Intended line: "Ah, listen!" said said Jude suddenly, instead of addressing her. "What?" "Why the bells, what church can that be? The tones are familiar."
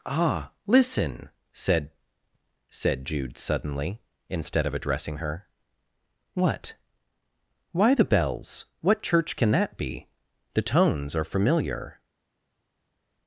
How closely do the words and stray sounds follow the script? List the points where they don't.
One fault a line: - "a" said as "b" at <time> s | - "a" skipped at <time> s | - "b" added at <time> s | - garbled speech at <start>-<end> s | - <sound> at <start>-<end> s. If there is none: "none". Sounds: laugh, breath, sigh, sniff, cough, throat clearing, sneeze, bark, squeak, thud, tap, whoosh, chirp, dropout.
none